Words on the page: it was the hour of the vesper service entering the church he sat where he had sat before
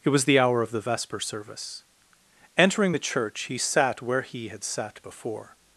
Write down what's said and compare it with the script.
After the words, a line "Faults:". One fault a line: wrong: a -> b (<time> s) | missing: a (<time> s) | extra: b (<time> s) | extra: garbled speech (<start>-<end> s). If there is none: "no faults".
it was the hour of the vesper service entering the church he sat where he had sat before
Faults:
no faults